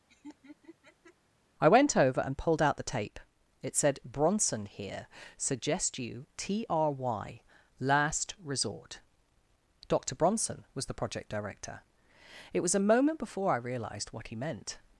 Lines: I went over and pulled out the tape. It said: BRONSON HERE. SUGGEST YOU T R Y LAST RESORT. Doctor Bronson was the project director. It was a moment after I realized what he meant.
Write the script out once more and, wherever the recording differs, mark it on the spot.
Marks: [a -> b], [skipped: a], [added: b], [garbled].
I went over and pulled out the tape. It said: BRONSON HERE. SUGGEST YOU T R Y LAST RESORT. Doctor Bronson was the project director. It was a moment [after -> before] I realized what he meant.